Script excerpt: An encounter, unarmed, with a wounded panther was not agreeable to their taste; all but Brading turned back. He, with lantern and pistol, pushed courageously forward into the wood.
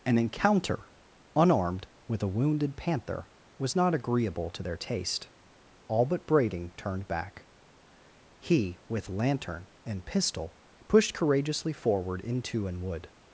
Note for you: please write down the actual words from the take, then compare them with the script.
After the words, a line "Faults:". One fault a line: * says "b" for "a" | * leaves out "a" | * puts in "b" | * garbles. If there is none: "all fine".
An encounter, unarmed, with a wounded panther was not agreeable to their taste; all but Brading turned back. He, with lantern and pistol, pushed courageously forward into an wood.
Faults:
* says "an" for "the"